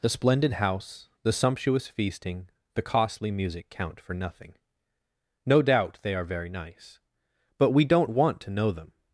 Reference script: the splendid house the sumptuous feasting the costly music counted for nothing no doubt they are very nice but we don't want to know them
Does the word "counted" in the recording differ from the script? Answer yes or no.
yes